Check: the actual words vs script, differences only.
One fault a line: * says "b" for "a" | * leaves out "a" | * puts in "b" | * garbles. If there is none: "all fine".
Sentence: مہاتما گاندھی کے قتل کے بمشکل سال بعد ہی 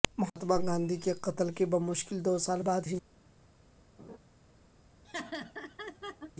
* puts in "دو"